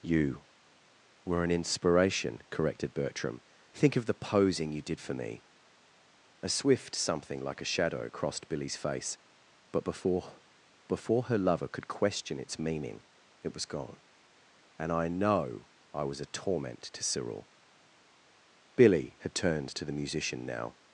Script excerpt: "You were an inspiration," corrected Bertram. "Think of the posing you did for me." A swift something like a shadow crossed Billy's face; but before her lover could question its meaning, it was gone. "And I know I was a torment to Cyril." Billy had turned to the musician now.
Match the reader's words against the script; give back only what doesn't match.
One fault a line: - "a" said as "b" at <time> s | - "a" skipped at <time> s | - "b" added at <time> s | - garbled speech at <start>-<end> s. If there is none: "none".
- "before" added at 10.9 s